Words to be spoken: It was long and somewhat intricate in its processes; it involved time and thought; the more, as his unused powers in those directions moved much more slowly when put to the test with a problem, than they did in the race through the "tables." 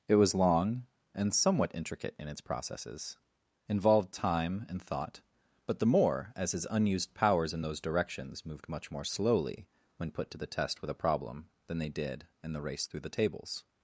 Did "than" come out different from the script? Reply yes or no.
no